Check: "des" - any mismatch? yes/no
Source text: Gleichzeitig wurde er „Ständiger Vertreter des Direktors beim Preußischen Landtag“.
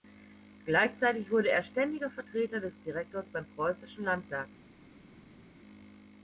no